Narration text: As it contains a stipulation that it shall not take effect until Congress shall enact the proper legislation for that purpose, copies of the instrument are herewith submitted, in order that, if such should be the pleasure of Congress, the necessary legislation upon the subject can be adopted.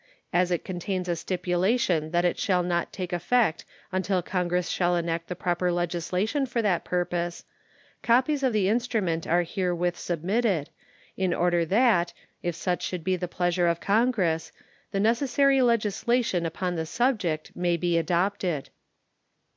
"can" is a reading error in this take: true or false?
true